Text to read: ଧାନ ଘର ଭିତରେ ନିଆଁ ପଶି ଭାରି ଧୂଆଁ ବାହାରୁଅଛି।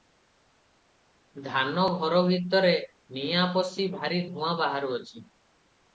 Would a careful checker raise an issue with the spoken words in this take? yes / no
no